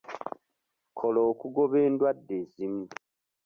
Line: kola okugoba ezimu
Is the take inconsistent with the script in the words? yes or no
yes